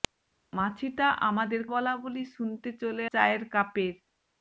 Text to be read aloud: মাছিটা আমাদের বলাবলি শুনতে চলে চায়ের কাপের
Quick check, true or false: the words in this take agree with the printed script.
true